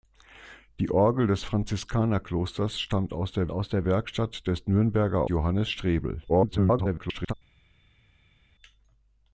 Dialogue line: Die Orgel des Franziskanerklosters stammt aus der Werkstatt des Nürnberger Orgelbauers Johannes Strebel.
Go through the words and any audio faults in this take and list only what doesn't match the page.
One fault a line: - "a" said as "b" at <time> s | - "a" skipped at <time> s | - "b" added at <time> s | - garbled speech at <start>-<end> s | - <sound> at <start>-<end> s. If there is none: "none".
- "aus der" added at 3.5 s
- "Orgelbauers" skipped at 5.3 s
- garbled speech at 6.3-7.3 s